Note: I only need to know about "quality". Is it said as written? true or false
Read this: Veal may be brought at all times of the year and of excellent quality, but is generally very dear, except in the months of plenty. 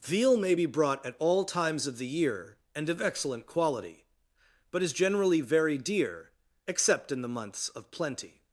true